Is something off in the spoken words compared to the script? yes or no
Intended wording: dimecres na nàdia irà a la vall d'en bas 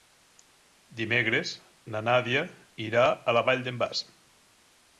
no